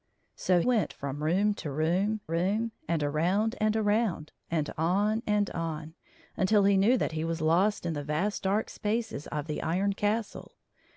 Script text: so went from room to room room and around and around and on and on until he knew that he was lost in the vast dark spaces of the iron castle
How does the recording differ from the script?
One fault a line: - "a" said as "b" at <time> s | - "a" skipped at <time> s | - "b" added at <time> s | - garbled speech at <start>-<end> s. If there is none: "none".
none